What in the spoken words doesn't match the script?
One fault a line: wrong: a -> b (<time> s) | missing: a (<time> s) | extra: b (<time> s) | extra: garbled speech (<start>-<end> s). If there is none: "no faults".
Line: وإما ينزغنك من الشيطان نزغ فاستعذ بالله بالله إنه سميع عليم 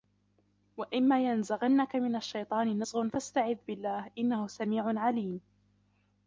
missing: بالله (4.1 s)